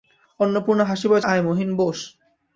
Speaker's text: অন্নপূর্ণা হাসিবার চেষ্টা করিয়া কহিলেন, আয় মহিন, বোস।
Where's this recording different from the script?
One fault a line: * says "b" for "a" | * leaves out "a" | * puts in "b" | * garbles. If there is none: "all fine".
* leaves out "চেষ্টা করিয়া কহিলেন"